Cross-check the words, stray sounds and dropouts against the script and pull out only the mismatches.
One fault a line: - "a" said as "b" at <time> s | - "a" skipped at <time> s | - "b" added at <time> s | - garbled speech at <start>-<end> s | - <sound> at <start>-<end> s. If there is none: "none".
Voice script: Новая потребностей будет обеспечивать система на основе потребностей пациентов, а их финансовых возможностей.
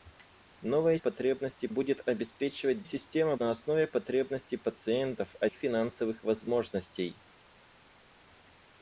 none